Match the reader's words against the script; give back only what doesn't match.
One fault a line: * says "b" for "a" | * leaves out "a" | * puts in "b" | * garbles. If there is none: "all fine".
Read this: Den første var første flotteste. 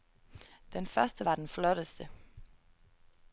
* says "den" for "første"